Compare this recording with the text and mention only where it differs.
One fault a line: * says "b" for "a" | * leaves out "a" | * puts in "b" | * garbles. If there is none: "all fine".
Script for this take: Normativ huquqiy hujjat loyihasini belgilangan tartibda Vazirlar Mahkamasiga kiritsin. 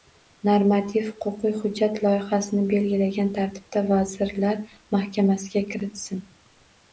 all fine